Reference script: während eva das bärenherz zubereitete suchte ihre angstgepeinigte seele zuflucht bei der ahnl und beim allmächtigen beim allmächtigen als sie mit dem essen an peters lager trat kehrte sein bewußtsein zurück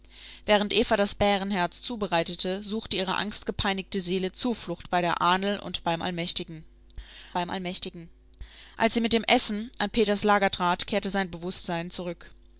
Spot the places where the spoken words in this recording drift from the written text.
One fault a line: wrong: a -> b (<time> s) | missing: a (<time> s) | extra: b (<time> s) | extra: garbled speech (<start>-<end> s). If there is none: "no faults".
no faults